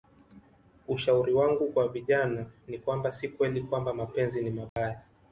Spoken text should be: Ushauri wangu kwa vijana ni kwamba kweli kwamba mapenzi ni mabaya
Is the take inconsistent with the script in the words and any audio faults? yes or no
yes